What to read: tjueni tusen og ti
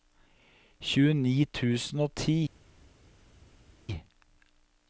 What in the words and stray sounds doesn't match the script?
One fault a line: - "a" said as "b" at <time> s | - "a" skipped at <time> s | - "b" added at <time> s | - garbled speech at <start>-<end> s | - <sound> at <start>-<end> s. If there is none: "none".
none